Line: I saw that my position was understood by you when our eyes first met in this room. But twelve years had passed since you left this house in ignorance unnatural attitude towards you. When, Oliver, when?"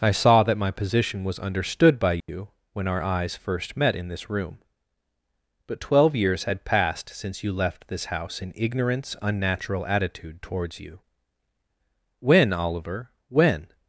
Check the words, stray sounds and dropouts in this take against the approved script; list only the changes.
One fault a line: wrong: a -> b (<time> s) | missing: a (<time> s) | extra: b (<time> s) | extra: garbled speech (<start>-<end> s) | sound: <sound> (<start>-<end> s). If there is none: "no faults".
sound: dropout (2.2-2.3 s)